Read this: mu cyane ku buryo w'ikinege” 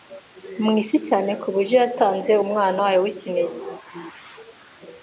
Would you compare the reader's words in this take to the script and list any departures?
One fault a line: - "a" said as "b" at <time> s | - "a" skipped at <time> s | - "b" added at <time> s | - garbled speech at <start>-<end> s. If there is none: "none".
- "isi" added at 0.8 s
- "yatanze Umwana wayo" added at 1.8 s